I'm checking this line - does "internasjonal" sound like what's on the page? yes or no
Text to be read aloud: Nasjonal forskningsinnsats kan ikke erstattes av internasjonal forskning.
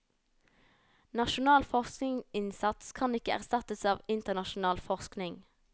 yes